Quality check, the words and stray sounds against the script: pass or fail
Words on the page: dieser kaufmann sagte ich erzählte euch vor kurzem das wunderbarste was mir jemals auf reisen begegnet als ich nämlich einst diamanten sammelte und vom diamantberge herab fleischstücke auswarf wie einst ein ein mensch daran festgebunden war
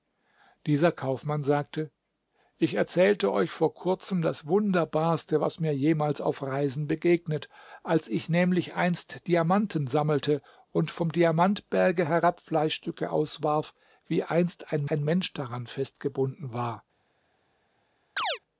fail